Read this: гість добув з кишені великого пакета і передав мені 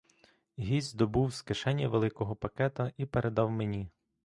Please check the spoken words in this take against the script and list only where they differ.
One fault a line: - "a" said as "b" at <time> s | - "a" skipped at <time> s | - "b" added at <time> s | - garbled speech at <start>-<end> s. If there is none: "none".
none